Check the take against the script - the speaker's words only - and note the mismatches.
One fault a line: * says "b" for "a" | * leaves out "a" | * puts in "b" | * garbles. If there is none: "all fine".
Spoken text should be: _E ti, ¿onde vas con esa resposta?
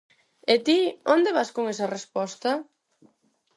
all fine